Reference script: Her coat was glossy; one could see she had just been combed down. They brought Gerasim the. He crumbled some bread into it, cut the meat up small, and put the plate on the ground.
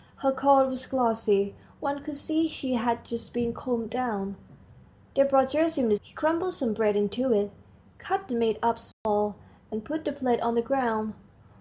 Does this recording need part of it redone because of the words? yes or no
no